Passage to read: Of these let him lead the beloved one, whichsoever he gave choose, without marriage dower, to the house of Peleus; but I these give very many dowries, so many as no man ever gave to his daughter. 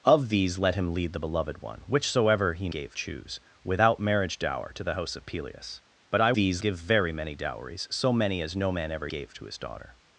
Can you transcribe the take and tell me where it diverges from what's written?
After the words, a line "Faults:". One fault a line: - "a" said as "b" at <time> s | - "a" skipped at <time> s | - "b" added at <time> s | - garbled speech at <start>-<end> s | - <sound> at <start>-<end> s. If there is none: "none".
Of these let him lead the beloved one, whichsoever he gave choose, without marriage dower, to the house of Peleus; but I these give very many dowries, so many as no man ever gave to his daughter.
Faults:
none